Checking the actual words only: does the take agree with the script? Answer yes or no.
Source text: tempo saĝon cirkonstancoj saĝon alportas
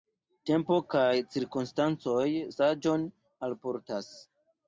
no